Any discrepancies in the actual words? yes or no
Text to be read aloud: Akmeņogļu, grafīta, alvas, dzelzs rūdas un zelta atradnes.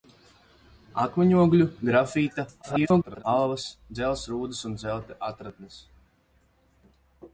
yes